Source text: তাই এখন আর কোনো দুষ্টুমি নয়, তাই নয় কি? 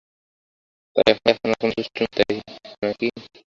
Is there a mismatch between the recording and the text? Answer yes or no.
yes